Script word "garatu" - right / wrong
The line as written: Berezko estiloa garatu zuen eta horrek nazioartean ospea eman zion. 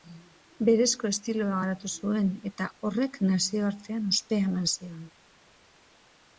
right